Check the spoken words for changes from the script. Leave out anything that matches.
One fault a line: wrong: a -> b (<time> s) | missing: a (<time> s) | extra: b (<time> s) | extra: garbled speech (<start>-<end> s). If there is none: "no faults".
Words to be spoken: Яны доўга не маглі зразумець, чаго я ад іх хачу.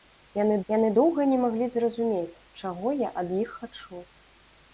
extra: яны (0.7 s)